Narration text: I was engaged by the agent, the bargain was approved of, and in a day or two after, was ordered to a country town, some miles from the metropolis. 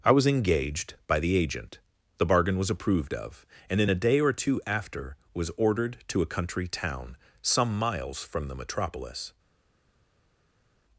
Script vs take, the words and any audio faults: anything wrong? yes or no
no